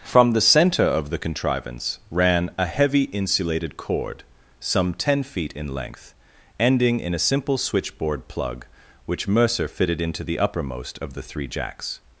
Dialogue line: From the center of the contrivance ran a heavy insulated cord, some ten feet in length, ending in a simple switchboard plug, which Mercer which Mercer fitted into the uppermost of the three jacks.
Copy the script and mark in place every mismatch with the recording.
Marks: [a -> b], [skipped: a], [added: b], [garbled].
From the center of the contrivance ran a heavy insulated cord, some ten feet in length, ending in a simple switchboard plug, which Mercer [skipped: which Mercer] fitted into the uppermost of the three jacks.